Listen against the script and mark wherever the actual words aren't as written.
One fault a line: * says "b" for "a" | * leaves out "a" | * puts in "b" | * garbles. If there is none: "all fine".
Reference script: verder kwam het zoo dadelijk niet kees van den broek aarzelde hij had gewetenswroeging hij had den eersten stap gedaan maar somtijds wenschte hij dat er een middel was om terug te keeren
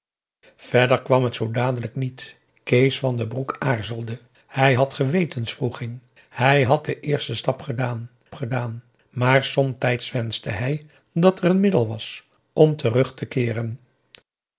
* puts in "gedaan"